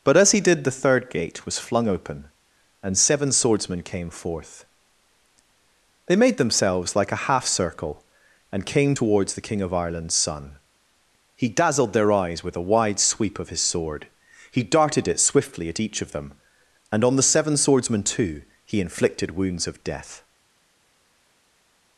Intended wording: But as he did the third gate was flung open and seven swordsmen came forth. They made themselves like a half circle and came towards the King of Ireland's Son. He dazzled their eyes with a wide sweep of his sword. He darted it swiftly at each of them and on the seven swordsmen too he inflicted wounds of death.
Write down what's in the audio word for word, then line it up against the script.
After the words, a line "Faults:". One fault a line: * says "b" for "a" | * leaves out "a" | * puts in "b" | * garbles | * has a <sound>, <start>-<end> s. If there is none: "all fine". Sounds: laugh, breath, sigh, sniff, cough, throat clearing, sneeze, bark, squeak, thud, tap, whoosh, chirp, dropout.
But as he did the third gate was flung open and seven swordsmen came forth. They made themselves like a half circle and came towards the King of Ireland's Son. He dazzled their eyes with a wide sweep of his sword. He darted it swiftly at each of them and on the seven swordsmen too he inflicted wounds of death.
Faults:
all fine